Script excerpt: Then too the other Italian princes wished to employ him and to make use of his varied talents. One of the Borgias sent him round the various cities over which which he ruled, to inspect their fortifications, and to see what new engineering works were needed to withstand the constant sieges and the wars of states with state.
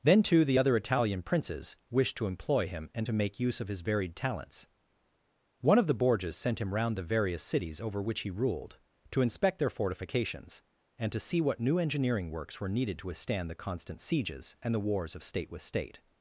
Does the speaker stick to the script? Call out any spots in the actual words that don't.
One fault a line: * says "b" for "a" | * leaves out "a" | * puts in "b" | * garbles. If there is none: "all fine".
* leaves out "which"
* says "state" for "states"